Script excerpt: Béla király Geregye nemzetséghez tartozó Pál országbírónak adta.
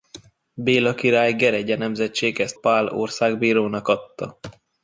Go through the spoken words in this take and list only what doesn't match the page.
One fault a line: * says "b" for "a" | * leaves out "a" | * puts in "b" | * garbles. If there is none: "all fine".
* leaves out "tartozó"